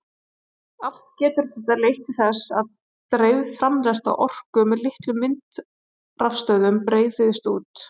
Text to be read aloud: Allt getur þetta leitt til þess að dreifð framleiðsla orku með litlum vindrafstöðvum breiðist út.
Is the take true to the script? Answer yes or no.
yes